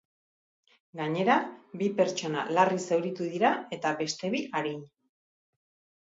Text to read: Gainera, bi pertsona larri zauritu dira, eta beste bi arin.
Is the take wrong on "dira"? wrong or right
right